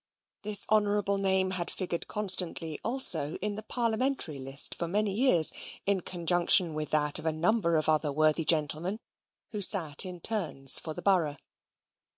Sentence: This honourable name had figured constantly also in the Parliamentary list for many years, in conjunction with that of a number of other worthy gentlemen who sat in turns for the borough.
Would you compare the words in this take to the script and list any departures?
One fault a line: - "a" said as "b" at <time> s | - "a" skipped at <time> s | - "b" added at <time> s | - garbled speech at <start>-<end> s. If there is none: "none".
none